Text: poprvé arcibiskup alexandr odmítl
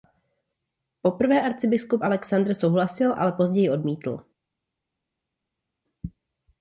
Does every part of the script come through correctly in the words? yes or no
no